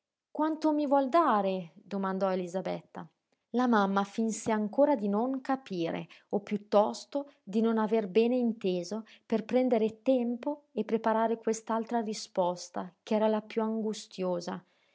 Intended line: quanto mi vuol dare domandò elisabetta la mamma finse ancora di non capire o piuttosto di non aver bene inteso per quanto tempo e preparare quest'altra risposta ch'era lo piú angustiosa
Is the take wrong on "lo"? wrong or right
wrong